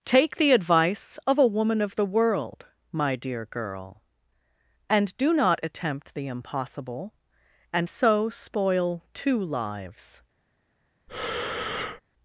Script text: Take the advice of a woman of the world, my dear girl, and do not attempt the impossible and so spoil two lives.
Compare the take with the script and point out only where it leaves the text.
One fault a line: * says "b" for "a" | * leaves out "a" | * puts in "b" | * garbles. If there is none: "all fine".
all fine